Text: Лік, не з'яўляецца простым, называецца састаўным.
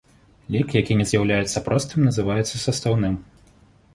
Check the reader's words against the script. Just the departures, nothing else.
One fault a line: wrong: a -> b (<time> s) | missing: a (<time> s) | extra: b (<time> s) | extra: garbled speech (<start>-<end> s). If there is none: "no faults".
extra: які (0.8 s)